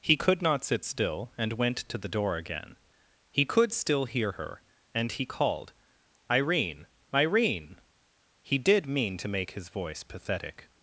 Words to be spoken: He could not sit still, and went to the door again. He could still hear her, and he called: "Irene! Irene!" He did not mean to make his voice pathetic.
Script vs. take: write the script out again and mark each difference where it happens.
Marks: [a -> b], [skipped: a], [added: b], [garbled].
He could not sit still, and went to the door again. He could still hear her, and he called: "Irene! Irene!" He did [skipped: not] mean to make his voice pathetic.